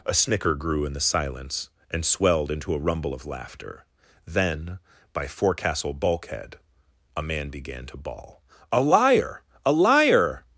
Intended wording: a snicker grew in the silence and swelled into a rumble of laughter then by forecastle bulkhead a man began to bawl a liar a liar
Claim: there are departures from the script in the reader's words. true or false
false